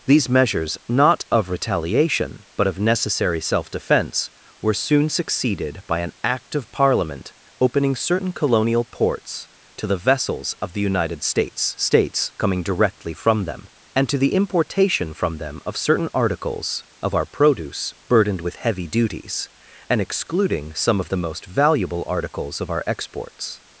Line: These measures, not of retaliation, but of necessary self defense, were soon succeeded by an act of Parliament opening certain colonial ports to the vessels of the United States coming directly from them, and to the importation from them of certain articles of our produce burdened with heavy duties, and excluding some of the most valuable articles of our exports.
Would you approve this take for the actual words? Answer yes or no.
no